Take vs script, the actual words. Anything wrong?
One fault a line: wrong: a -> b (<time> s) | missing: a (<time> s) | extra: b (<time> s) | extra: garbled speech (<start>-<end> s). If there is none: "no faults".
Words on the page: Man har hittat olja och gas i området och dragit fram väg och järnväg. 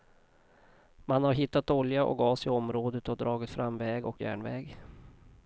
no faults